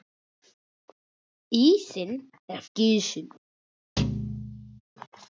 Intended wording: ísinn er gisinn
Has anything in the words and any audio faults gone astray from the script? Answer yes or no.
yes